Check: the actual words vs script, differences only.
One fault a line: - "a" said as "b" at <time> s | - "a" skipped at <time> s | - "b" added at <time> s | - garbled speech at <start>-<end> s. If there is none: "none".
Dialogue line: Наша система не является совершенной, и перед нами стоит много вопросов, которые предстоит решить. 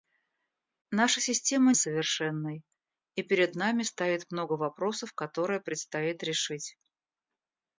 - "не является" skipped at 1.7 s